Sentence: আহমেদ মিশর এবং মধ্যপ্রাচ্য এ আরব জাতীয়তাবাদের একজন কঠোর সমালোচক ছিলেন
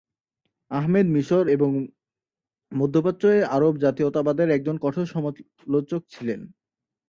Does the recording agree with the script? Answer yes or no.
yes